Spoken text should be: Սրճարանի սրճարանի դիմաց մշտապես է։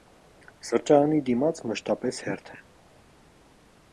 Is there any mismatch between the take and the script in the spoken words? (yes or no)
yes